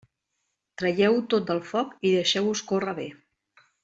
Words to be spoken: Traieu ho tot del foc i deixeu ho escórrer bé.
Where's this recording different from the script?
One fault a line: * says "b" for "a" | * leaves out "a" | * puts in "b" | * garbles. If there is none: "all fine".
all fine